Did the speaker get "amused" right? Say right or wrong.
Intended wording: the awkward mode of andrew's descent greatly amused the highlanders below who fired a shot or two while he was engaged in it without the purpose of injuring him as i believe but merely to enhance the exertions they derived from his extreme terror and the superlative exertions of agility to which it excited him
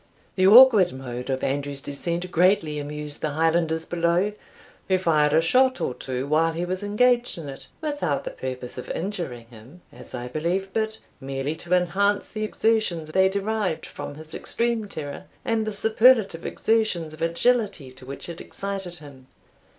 right